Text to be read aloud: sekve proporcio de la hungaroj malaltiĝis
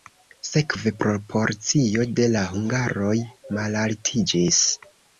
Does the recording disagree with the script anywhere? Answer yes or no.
no